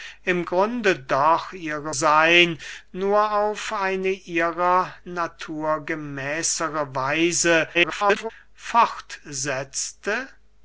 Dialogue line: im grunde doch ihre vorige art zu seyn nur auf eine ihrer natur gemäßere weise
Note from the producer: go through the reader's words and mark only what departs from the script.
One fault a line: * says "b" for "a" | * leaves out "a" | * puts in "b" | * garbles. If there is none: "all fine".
* leaves out "vorige art zu"
* garbles